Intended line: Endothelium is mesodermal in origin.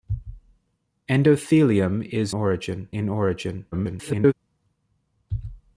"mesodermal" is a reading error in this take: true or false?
true